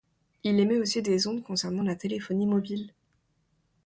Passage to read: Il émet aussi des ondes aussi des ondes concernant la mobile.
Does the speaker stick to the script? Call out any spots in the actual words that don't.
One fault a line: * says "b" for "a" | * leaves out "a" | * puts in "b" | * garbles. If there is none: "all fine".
* leaves out "aussi des ondes"
* puts in "téléphonie"